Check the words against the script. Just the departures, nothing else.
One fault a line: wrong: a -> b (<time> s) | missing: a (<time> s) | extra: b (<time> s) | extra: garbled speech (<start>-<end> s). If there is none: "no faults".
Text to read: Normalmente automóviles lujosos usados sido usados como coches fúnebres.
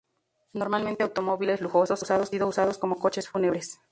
no faults